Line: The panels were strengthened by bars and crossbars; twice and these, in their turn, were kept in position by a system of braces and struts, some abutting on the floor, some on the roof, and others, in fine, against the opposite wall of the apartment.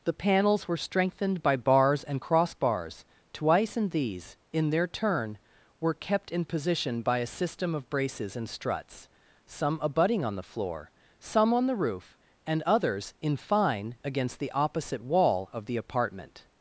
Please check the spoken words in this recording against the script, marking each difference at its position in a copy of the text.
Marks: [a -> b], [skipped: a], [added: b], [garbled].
The panels were strengthened by bars and crossbars; twice and these, in their turn, were kept in position by a system of braces and struts, some abutting on the floor, some on the roof, and others, in fine, against the opposite wall of the apartment.